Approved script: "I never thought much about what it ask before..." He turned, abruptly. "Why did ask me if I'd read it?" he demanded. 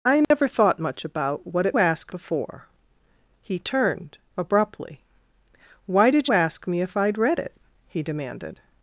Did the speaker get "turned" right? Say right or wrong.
right